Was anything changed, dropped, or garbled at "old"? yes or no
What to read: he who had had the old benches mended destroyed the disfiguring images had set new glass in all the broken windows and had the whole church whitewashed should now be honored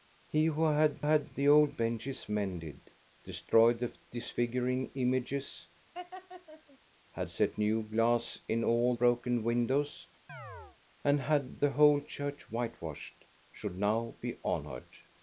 no